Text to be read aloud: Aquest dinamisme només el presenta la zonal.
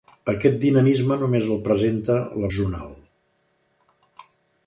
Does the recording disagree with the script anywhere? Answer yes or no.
no